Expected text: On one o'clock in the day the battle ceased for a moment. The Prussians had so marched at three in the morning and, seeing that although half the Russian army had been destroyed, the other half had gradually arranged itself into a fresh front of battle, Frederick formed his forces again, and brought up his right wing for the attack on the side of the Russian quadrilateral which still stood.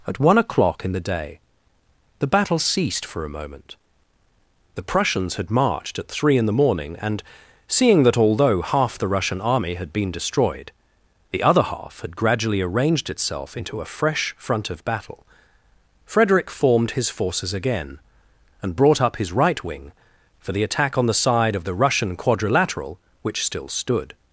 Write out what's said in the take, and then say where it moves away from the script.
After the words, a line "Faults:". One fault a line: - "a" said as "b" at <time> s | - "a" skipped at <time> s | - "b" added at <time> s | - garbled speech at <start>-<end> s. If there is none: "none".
At one o'clock in the day the battle ceased for a moment. The Prussians had marched at three in the morning and, seeing that although half the Russian army had been destroyed, the other half had gradually arranged itself into a fresh front of battle, Frederick formed his forces again, and brought up his right wing for the attack on the side of the Russian quadrilateral which still stood.
Faults:
- "On" said as "At" at 0.1 s
- "so" skipped at 5.5 s